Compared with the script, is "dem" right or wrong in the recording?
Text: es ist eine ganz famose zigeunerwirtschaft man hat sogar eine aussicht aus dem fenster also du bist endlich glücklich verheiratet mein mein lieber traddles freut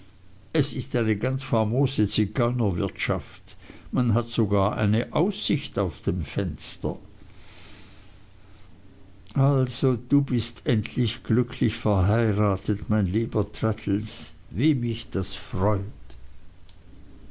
right